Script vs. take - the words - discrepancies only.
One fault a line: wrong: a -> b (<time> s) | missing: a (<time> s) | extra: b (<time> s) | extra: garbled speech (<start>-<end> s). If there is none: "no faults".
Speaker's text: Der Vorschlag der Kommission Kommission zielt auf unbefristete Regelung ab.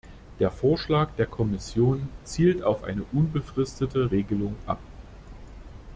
missing: Kommission (2.1 s)
extra: eine (2.8 s)